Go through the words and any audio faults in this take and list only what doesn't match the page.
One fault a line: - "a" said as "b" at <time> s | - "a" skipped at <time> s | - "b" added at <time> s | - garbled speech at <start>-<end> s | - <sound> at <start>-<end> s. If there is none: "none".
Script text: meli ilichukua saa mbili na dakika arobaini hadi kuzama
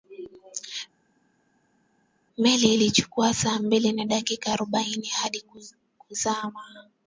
none